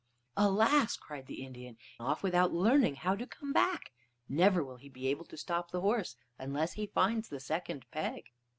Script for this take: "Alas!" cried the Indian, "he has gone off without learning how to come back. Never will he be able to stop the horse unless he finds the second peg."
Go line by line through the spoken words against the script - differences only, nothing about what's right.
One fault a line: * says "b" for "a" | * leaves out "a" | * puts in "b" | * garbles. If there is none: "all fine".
* leaves out "he has gone"